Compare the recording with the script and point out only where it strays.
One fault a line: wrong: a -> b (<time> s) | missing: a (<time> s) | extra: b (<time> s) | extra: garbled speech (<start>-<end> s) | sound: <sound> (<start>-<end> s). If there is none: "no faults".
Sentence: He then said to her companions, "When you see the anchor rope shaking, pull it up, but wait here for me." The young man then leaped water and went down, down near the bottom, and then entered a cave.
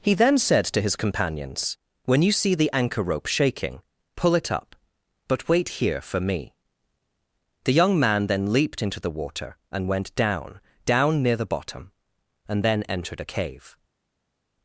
wrong: her -> his (0.8 s)
extra: into the (8.8 s)